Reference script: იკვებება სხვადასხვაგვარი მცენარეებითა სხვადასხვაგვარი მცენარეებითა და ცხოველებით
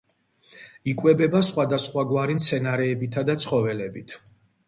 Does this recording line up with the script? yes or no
no